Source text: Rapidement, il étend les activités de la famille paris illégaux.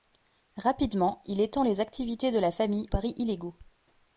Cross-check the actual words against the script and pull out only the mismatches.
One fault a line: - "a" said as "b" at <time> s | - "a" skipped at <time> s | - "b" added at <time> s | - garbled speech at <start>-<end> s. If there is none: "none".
none